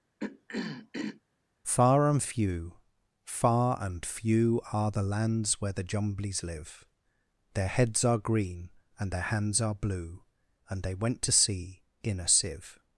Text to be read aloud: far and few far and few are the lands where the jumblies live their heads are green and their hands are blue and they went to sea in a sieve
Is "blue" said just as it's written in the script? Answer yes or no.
yes